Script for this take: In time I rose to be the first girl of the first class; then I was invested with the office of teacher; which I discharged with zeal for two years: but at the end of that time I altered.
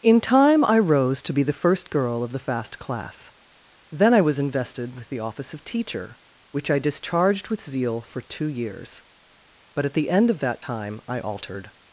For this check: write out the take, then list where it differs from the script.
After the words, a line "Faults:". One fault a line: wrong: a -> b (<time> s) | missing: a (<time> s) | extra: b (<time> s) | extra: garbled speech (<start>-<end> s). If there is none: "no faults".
In time I rose to be the first girl of the fast class; then I was invested with the office of teacher; which I discharged with zeal for two years: but at the end of that time I altered.
Faults:
wrong: first -> fast (2.4 s)